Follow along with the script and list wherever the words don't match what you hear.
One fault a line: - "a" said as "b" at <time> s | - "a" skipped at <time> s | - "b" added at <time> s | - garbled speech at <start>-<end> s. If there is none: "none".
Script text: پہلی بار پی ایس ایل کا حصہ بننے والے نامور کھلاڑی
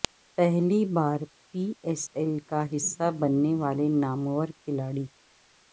none